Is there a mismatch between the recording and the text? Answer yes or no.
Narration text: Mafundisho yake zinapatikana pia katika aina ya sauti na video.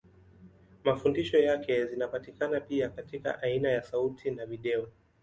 no